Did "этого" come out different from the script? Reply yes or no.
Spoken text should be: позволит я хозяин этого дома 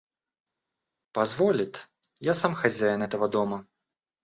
no